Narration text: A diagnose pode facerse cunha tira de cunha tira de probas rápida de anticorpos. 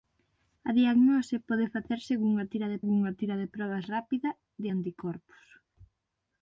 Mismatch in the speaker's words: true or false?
false